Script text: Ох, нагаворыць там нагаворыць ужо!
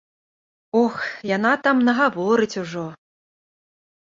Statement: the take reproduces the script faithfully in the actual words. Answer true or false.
false